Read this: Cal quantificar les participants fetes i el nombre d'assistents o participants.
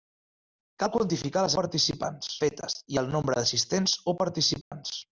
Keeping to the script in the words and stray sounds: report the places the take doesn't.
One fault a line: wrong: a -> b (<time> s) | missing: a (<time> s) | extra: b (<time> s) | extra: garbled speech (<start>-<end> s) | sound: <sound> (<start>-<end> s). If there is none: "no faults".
sound: dropout (4.6-4.7 s)